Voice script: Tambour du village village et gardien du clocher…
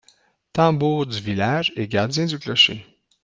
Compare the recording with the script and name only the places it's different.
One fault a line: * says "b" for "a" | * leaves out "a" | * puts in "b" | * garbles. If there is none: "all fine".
* leaves out "village"